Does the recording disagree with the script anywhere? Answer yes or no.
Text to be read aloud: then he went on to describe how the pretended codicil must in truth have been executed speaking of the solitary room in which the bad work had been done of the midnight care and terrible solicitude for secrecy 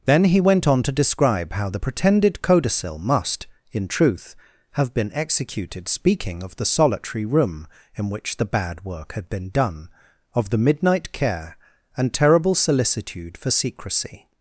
no